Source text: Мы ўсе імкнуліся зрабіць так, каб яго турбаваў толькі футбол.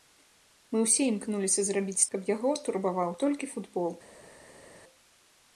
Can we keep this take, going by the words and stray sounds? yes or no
no